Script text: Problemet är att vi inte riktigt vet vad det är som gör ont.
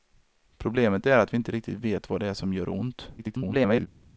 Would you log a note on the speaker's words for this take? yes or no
yes